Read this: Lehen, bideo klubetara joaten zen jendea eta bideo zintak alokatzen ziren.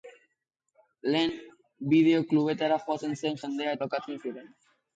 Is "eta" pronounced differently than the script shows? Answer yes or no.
yes